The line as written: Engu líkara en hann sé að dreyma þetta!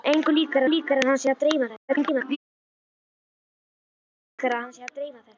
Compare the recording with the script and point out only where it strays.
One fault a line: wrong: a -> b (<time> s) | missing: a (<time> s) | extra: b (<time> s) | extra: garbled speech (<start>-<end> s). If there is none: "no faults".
extra: líkara (0.7 s)
extra: garbled speech (1.9-2.4 s)